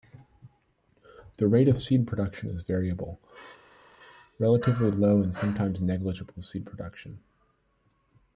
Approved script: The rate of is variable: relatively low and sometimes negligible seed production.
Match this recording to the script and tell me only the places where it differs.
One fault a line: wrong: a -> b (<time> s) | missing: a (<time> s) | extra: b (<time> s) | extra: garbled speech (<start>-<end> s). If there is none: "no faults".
extra: seed production (1.8 s)